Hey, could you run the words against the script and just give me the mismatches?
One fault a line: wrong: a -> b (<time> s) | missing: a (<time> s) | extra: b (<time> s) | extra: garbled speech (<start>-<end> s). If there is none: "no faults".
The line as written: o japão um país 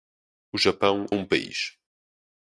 no faults